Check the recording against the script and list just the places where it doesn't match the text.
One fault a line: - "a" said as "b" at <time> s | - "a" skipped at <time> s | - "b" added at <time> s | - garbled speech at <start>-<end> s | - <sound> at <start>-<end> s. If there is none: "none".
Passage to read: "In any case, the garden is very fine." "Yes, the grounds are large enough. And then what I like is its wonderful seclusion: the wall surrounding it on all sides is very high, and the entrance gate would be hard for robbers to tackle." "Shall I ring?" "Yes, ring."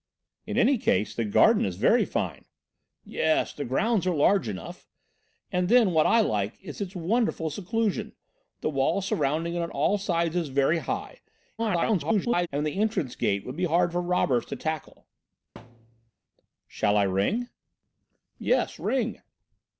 - garbled speech at 11.6-12.5 s
- thud at 15.6-16.1 s